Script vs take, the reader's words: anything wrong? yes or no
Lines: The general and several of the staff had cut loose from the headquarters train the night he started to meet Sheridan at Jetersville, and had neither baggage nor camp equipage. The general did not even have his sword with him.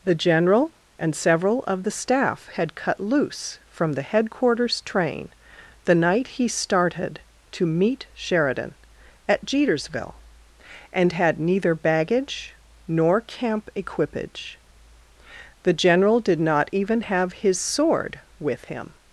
no